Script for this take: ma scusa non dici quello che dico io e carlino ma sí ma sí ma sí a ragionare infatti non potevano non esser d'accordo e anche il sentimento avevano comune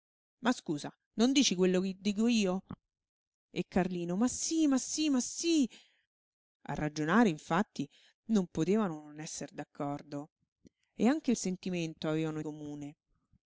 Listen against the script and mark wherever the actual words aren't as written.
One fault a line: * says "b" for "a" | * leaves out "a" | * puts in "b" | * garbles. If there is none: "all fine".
all fine